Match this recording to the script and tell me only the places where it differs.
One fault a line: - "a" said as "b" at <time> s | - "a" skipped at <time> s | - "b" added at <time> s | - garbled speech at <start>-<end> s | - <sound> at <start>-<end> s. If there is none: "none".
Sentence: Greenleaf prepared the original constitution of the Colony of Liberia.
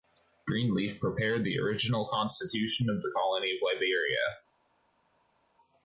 none